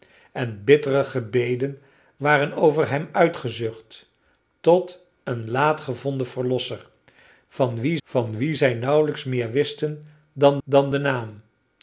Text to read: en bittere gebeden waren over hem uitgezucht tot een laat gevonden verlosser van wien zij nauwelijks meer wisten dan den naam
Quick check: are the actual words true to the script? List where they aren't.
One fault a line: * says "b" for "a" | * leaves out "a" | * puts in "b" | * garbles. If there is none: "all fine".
* puts in "van wien"
* puts in "dan"